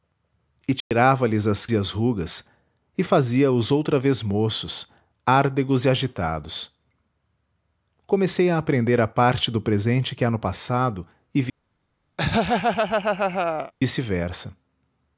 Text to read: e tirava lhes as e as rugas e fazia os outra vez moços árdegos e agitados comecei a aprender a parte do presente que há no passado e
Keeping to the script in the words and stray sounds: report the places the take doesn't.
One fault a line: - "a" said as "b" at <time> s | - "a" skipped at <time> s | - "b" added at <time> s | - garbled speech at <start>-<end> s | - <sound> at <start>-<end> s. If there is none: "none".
- dropout at 0.8-0.9 s
- laugh at 12.2-13.7 s